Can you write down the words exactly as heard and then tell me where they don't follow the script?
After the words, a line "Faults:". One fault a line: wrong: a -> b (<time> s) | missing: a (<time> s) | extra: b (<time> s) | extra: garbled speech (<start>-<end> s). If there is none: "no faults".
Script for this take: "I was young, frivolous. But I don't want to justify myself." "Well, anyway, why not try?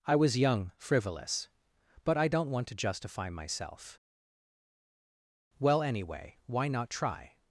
"I was young, frivolous. But I don't want to justify myself." "Well, anyway, why not try?
Faults:
no faults